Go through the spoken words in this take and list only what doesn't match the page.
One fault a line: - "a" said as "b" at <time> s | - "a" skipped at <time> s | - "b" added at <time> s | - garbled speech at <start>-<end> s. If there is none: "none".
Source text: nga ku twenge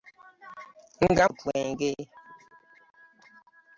none